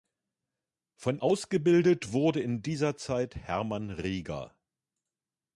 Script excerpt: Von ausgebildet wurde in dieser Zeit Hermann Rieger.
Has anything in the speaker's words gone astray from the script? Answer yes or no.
no